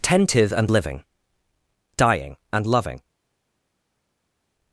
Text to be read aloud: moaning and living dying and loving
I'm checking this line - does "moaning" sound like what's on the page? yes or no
no